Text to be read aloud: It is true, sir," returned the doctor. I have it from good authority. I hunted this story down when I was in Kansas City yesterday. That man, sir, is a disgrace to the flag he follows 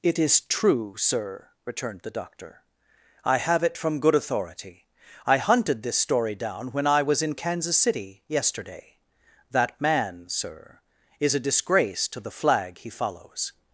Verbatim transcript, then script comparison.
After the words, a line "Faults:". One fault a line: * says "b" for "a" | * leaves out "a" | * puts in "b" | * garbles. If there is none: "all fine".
It is true, sir," returned the doctor. I have it from good authority. I hunted this story down when I was in Kansas City yesterday. That man, sir, is a disgrace to the flag he follows
Faults:
all fine